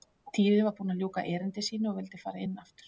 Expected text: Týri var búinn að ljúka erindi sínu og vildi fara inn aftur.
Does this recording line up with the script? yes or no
yes